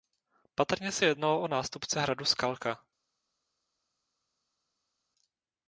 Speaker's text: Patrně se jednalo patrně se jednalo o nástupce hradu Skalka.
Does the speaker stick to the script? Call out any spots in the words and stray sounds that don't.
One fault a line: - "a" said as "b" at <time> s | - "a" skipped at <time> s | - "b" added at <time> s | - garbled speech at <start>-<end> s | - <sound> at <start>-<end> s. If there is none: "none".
- "patrně se jednalo" skipped at 1.4 s